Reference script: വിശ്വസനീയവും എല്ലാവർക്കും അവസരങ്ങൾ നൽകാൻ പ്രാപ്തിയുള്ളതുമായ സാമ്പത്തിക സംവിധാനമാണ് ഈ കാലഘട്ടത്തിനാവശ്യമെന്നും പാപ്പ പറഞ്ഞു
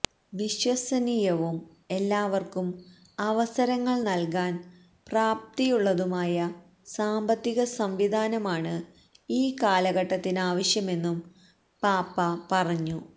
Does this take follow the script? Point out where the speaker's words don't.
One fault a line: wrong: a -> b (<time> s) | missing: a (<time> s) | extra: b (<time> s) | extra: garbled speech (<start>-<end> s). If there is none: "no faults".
no faults